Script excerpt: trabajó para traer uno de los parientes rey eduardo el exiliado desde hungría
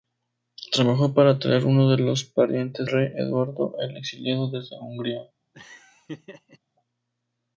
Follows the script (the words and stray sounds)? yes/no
no